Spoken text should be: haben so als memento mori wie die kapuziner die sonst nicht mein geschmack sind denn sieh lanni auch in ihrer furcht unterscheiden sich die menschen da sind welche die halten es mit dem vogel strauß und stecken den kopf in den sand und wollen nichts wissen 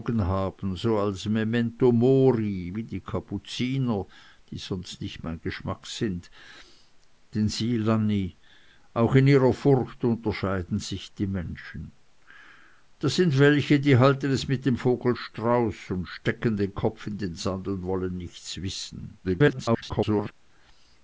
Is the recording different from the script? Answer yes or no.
yes